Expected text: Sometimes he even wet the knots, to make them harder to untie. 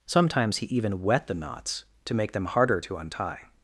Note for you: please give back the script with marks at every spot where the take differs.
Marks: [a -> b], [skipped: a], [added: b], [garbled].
Sometimes he even wet the knots, to make them harder to untie.